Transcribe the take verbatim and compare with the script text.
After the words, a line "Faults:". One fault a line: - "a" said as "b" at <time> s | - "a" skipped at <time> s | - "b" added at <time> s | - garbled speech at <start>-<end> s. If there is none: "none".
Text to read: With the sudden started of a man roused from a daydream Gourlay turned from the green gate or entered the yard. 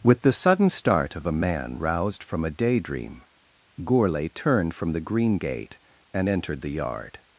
With the sudden start of a man roused from a daydream Gourlay turned from the green gate and entered the yard.
Faults:
- "started" said as "start" at 0.7 s
- "or" said as "and" at 6.1 s